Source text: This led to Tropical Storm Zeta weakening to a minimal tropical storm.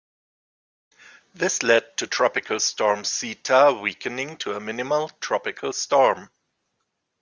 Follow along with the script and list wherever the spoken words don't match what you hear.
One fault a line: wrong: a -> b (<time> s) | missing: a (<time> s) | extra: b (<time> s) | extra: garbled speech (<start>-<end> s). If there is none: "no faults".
no faults